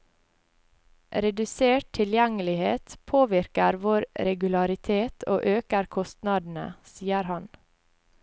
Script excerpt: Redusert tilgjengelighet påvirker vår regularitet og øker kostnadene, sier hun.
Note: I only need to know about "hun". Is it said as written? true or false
false